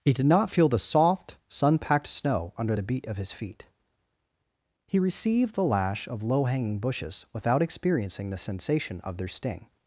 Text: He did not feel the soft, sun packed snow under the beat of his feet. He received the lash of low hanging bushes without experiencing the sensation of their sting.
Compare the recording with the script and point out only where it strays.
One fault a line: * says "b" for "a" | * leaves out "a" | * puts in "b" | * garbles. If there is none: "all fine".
all fine